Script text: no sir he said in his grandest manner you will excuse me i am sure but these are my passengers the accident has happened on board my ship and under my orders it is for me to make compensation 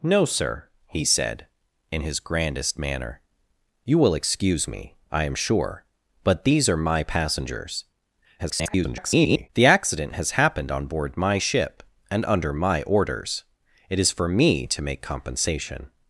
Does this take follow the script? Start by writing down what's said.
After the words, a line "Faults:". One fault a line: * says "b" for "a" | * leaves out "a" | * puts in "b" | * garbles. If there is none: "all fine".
no sir he said in his grandest manner you will excuse me i am sure but these are my passengers [garbled] the accident has happened on board my ship and under my orders it is for me to make compensation
Faults:
* garbles